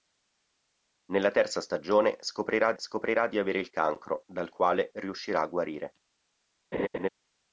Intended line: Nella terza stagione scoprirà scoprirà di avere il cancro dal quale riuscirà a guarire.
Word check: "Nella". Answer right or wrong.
right